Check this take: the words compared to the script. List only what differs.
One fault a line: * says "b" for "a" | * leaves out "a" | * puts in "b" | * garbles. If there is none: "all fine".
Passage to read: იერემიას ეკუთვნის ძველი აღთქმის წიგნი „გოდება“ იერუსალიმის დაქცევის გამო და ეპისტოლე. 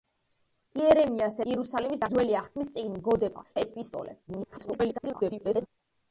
* says "იერუსალიმის" for "ეკუთვნის"
* leaves out "იერუსალიმის დაქცევის გამო"
* garbles